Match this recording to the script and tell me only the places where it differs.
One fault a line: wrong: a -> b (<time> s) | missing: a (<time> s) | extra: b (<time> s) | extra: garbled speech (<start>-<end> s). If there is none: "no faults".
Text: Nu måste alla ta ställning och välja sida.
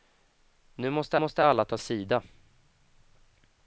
extra: måste (1.1 s)
missing: ställning och välja (1.8 s)